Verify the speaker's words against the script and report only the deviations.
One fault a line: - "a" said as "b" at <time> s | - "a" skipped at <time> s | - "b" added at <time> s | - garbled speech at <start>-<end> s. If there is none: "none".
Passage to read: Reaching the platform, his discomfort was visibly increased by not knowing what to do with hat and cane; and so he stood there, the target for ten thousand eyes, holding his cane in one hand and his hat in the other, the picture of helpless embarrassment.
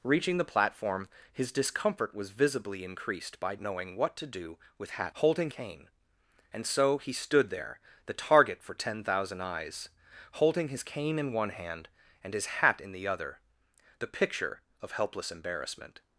- "not" skipped at 3.5 s
- "and" said as "holding" at 5.2 s